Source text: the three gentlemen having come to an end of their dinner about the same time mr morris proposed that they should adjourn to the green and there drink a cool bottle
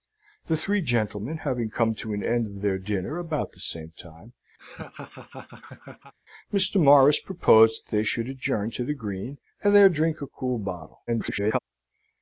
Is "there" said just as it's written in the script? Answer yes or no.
yes